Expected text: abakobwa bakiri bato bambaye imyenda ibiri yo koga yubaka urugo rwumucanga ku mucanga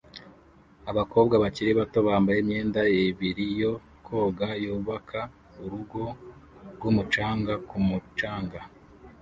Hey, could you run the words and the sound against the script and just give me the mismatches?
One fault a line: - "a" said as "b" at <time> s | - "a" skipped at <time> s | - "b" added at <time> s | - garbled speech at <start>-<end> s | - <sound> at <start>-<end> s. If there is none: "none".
none